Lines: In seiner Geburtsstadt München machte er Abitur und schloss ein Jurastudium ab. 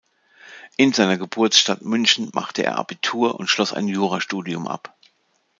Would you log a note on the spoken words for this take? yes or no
no